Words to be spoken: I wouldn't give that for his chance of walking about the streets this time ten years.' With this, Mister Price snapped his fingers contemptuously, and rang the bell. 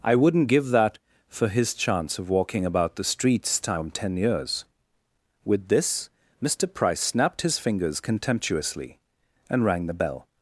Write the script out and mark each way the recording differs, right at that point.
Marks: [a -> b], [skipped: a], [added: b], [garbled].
I wouldn't give that for his chance of walking about the streets [skipped: this] time ten years.' With this, Mister Price snapped his fingers contemptuously, and rang the bell.